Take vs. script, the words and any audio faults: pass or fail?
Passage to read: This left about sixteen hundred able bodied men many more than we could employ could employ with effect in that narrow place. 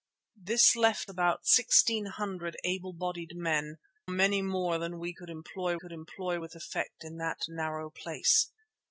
pass